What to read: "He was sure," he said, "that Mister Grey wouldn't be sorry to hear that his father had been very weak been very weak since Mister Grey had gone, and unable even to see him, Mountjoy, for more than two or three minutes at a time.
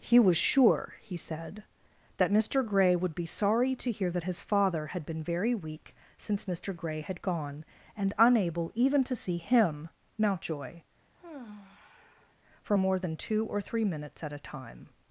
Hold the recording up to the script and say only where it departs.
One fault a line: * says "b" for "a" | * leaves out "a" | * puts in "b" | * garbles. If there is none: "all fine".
* says "would" for "wouldn't"
* leaves out "been very weak"